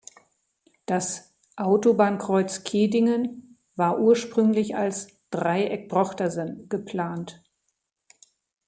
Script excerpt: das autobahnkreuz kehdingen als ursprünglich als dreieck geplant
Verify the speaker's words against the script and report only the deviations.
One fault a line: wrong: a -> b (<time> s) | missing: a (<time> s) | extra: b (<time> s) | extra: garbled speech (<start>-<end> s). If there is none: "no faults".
wrong: als -> war (3.8 s)
extra: drochtersen (5.9 s)